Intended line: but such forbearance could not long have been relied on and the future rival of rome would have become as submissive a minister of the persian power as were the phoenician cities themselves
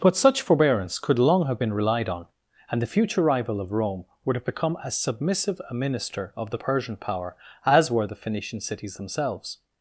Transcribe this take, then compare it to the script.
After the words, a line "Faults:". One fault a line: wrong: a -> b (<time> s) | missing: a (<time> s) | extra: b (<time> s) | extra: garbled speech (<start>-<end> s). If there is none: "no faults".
but such forbearance could long have been relied on and the future rival of rome would have become as submissive a minister of the persian power as were the phoenician cities themselves
Faults:
missing: not (1.2 s)